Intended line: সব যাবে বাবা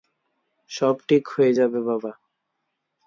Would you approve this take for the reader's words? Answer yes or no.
no